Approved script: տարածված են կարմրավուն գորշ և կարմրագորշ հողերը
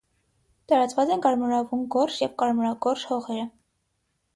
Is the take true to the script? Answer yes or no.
yes